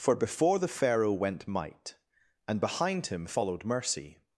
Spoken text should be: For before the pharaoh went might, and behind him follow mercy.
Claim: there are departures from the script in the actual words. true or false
true